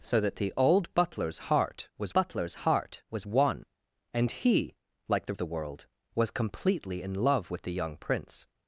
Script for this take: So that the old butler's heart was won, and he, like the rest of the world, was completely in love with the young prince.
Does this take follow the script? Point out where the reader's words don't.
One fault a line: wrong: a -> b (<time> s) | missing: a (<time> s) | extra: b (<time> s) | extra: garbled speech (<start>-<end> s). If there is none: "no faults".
extra: butler's heart was (2.1 s)
missing: rest (5.3 s)